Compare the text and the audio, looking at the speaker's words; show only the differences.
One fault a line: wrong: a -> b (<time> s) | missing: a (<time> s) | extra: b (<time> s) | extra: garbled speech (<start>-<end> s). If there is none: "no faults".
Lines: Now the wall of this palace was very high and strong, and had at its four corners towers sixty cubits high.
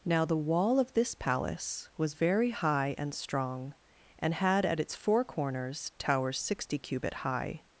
wrong: cubits -> cubit (6.8 s)